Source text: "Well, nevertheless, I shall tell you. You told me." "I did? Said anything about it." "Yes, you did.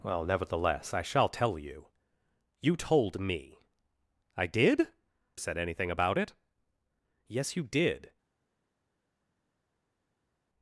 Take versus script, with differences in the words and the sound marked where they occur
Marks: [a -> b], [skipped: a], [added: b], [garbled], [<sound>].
"Well, nevertheless, I shall tell you. You told me." "I did? Said anything about it." "Yes, you did.